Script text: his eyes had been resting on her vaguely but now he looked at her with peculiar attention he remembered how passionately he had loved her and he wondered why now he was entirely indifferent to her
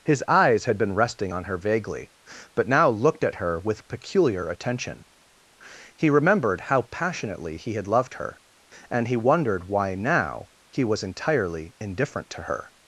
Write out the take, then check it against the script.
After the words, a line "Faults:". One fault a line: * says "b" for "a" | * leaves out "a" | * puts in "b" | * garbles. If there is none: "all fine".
his eyes had been resting on her vaguely but now looked at her with peculiar attention he remembered how passionately he had loved her and he wondered why now he was entirely indifferent to her
Faults:
* leaves out "he"